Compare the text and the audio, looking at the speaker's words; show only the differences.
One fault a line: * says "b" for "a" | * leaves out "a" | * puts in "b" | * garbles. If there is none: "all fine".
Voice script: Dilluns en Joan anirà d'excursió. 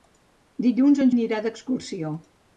* leaves out "Joan"